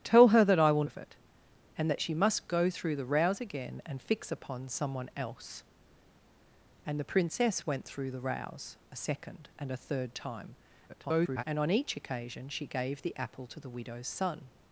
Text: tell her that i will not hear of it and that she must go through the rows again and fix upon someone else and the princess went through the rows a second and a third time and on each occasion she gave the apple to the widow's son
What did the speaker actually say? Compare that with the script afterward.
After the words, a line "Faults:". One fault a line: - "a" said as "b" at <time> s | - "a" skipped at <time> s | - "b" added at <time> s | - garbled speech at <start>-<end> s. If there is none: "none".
tell her that i will of it and that she must go through the rows again and fix upon someone else and the princess went through the rows a second and a third time [garbled] and on each occasion she gave the apple to the widow's son
Faults:
- "not hear" skipped at 0.8 s
- garbled speech at 10.9-11.4 s